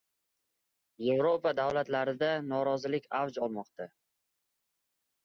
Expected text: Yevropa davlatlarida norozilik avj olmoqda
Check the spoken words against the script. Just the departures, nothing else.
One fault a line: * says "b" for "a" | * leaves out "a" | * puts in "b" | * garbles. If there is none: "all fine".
all fine